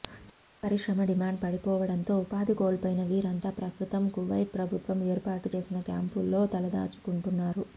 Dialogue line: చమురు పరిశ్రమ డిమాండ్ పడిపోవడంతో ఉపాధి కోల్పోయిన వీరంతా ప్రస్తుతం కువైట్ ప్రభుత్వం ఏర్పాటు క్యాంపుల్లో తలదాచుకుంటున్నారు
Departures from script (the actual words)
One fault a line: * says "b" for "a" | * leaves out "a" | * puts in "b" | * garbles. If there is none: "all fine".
* puts in "చేసిన"